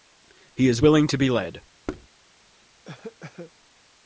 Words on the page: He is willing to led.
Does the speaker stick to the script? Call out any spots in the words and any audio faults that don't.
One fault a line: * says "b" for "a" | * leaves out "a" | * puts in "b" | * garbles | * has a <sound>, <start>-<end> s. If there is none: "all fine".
* puts in "be"
* has a thud, 1.9-2.1 s
* has a cough, 2.9-3.5 s